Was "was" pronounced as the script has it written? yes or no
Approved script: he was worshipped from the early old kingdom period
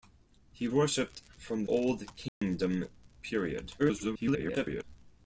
no